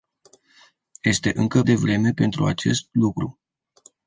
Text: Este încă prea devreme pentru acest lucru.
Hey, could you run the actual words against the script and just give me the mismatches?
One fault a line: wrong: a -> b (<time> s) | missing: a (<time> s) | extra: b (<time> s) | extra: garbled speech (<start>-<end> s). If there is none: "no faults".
missing: prea (1.6 s)